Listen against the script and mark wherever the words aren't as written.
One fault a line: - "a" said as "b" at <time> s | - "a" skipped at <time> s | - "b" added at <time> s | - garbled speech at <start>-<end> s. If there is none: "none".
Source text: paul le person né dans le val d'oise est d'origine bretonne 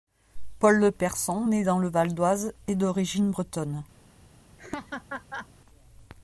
none